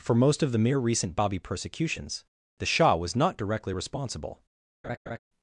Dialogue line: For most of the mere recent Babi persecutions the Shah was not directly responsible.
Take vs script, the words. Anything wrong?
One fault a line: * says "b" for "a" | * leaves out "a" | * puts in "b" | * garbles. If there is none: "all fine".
all fine